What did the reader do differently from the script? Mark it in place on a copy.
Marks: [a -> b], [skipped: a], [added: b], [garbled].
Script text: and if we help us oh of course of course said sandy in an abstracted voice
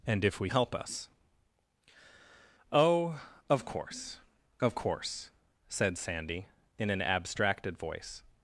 and if we help us oh of course of course said sandy in an abstracted voice